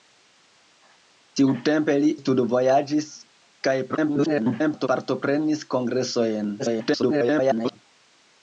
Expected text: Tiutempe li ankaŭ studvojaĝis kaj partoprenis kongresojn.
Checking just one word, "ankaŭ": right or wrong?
wrong